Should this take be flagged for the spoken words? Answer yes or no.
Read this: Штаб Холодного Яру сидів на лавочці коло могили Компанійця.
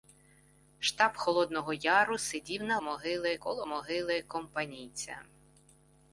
yes